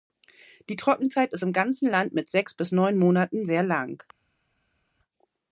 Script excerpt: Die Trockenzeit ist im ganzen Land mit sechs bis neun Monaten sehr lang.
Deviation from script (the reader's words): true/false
false